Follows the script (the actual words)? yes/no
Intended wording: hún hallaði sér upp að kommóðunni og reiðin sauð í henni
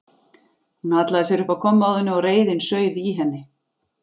yes